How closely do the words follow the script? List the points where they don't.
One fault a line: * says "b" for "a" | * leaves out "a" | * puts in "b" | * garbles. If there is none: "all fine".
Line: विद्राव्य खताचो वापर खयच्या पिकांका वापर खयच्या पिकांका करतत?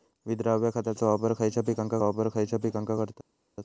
all fine